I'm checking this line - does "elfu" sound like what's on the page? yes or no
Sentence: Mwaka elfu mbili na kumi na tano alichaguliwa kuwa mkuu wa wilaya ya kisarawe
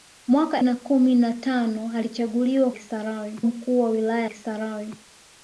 no